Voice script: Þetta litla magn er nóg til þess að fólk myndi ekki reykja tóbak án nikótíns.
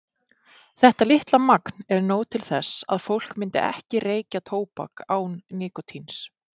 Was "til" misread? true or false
false